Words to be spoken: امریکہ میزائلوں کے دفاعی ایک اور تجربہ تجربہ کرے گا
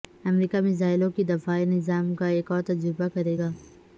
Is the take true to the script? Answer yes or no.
no